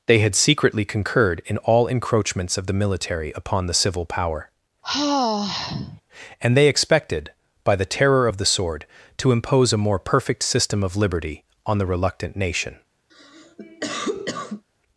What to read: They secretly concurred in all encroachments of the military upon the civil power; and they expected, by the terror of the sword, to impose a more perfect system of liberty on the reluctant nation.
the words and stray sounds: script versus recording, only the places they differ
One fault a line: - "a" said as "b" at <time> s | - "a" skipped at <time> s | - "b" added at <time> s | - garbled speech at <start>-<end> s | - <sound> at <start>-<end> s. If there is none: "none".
- "had" added at 0.2 s
- sigh at 4.8-6.0 s
- cough at 13.1-14.6 s